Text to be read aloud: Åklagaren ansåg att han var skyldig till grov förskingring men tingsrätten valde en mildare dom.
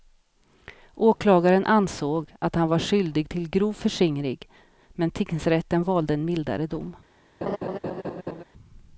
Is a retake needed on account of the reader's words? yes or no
no